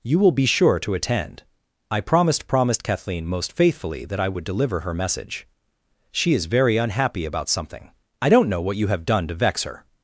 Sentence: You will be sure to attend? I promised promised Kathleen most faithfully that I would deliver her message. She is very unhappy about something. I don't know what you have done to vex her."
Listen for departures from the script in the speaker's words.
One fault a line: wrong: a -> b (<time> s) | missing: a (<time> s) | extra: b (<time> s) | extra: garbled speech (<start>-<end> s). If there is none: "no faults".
no faults